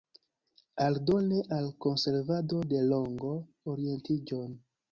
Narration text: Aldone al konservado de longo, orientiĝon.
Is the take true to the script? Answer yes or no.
yes